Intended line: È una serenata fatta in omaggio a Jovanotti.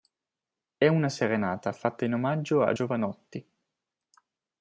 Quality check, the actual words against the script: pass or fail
pass